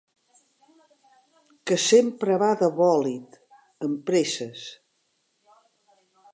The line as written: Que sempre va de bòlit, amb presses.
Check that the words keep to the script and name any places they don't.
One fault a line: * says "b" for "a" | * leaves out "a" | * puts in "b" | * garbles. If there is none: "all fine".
all fine